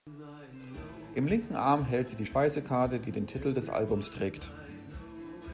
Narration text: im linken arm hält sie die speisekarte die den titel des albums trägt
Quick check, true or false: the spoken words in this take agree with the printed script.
true